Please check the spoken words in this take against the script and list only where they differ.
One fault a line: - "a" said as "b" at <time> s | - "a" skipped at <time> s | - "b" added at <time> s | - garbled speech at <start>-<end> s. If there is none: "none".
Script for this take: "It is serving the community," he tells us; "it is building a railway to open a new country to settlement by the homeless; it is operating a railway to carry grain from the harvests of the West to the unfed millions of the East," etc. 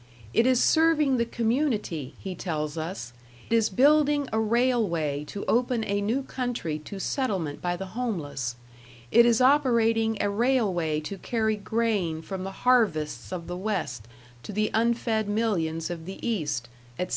- "it" skipped at 3.1 s